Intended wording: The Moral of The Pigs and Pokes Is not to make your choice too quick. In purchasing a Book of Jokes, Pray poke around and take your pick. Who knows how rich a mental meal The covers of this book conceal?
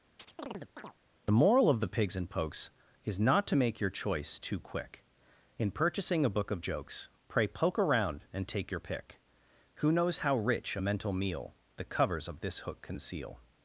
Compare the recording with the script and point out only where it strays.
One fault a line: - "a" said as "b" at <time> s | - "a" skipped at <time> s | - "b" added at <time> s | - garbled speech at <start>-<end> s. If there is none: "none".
- "book" said as "hook" at 12.6 s